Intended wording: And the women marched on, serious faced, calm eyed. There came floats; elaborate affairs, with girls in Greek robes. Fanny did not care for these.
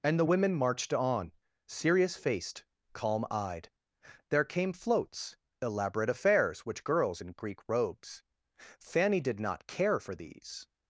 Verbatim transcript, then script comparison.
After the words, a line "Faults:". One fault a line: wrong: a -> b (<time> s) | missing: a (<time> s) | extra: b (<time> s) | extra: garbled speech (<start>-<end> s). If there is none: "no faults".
And the women marched on, serious faced, calm eyed. There came floats; elaborate affairs, which girls in Greek robes. Fanny did not care for these.
Faults:
wrong: with -> which (6.6 s)